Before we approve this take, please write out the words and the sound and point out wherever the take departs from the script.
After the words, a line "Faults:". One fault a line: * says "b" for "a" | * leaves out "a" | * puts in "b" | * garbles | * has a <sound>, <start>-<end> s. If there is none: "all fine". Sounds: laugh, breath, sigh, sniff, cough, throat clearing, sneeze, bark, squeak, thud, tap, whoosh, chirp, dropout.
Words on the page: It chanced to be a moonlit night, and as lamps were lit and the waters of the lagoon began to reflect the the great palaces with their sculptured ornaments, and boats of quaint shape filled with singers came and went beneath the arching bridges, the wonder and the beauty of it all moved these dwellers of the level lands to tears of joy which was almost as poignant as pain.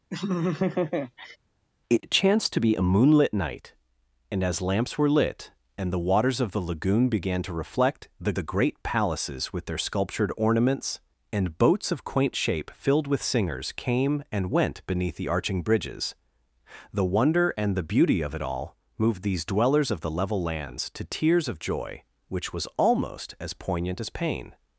It chanced to be a moonlit night, and as lamps were lit and the waters of the lagoon began to reflect the the great palaces with their sculptured ornaments, and boats of quaint shape filled with singers came and went beneath the arching bridges, the wonder and the beauty of it all moved these dwellers of the level lands to tears of joy which was almost as poignant as pain.
Faults:
* has a laugh, 0.1-1.4 s